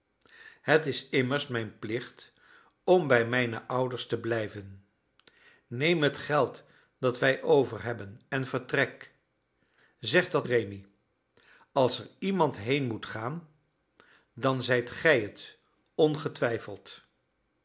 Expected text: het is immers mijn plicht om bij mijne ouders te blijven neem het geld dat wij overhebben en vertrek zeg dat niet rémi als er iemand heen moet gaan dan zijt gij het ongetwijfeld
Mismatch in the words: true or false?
true